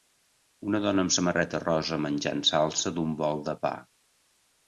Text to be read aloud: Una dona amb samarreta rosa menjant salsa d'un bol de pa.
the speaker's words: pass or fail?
pass